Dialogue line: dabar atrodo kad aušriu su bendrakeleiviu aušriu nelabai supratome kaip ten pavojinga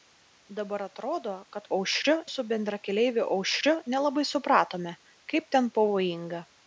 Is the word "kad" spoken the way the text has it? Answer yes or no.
yes